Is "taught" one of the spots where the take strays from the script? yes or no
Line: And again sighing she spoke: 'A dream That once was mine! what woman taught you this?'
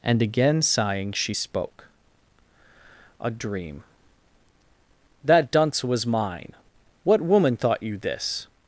yes